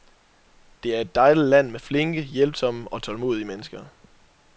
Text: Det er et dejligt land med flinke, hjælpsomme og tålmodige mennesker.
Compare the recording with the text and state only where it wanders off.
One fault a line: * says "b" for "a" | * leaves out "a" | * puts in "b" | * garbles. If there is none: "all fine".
all fine